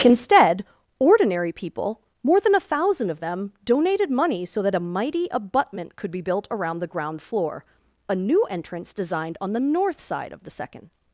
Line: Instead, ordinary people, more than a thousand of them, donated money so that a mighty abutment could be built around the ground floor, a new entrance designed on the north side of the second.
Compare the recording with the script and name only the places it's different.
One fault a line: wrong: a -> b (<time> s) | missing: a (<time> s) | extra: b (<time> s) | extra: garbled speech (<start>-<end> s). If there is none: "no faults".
no faults